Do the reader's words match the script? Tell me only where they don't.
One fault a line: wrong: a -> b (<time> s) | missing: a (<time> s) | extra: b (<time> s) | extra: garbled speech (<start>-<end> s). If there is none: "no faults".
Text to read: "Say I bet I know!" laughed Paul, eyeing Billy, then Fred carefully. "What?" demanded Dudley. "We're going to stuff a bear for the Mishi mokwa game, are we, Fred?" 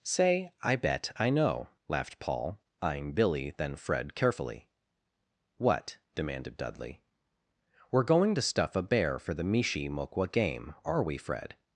no faults